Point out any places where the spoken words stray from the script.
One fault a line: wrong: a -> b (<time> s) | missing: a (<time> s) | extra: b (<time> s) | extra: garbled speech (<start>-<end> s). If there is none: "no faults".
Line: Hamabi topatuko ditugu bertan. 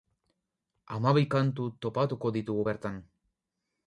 extra: kantu (1.4 s)